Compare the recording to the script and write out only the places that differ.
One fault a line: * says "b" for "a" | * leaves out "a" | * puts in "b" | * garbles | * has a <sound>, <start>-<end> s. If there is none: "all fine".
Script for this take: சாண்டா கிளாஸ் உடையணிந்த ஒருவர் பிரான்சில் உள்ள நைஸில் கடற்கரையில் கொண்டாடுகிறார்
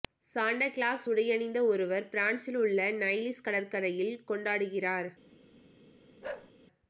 * has a bark, 6.2-6.5 s